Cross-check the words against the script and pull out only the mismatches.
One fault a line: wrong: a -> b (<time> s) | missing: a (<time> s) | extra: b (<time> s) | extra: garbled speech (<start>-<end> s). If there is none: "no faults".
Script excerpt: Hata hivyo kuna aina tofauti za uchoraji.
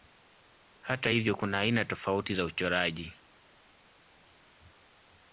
no faults